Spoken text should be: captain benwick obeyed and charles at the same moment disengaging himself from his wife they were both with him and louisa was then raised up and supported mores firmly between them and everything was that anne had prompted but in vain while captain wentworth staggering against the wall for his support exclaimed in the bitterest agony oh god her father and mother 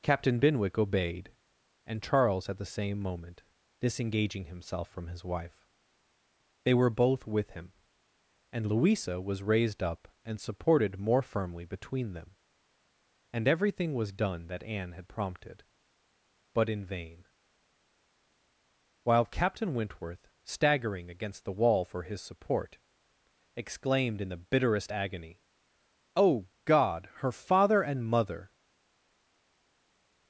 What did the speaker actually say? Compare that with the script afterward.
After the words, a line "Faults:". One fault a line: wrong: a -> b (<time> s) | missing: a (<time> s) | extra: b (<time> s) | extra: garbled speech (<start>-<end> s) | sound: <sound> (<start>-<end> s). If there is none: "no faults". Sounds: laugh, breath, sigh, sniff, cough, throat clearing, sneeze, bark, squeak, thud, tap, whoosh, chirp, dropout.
captain benwick obeyed and charles at the same moment disengaging himself from his wife they were both with him and louisa was raised up and supported more firmly between them and everything was done that anne had prompted but in vain while captain wentworth staggering against the wall for his support exclaimed in the bitterest agony oh god her father and mother
Faults:
missing: then (9.4 s)
wrong: mores -> more (11.0 s)
extra: done (14.1 s)